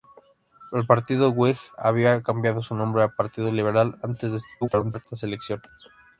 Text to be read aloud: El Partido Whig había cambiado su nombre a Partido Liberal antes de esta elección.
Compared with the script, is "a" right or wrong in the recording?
right